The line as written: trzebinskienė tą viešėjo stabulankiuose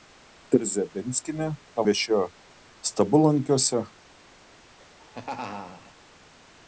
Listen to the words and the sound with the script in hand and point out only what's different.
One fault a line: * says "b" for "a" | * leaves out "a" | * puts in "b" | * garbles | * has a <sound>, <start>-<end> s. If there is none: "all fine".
* has a laugh, 4.8-5.9 s